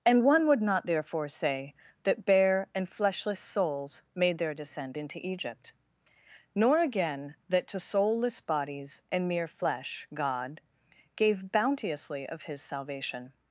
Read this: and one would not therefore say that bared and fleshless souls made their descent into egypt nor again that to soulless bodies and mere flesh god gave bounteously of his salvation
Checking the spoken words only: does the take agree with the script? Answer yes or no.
no